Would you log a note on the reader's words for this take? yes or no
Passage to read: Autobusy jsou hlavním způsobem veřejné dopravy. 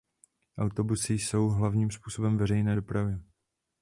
no